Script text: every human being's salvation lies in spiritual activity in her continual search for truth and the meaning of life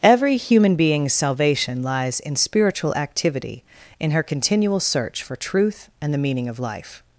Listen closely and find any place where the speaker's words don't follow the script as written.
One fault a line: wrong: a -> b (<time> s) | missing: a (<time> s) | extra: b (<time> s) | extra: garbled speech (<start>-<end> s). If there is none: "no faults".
no faults